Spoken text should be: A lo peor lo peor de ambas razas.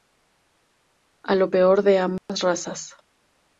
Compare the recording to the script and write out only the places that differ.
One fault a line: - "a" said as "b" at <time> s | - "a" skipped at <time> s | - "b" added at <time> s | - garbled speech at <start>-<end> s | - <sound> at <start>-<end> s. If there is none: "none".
- "lo peor" skipped at 1.8 s
- dropout at 2.2-2.3 s